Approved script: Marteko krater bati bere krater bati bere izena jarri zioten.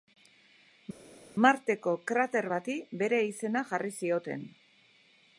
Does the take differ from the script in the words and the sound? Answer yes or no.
yes